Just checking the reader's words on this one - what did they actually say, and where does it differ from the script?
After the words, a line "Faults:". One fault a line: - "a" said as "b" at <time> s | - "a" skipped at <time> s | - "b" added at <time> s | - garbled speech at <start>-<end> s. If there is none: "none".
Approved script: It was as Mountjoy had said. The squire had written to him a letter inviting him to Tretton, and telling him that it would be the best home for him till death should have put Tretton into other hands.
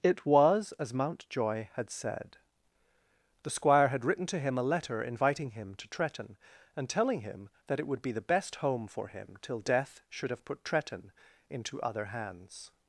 It was as Mountjoy had said. The squire had written to him a letter inviting him to Tretton, and telling him that it would be the best home for him till death should have put Tretton into other hands.
Faults:
none